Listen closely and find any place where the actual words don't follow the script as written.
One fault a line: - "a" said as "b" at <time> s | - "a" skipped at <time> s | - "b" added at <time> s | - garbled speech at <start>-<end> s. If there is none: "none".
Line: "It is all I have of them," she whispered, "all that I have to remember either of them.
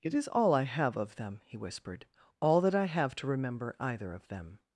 - "she" said as "he" at 1.4 s